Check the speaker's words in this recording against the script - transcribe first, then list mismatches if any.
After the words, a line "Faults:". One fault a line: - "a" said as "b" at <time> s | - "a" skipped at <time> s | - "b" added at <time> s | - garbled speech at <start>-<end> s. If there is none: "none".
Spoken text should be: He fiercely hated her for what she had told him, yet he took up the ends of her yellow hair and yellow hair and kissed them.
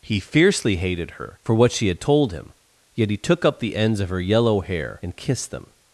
He fiercely hated her for what she had told him, yet he took up the ends of her yellow hair and kissed them.
Faults:
- "yellow hair and" skipped at 5.2 s